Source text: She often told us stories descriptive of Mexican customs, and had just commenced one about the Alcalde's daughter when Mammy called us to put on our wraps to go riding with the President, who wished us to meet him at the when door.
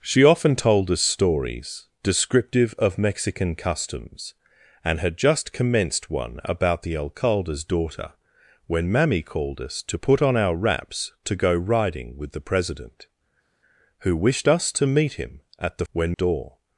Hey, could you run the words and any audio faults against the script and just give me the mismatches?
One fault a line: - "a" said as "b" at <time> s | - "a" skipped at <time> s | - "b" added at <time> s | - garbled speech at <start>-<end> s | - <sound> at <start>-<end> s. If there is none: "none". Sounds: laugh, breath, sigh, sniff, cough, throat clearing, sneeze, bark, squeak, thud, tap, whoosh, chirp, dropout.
none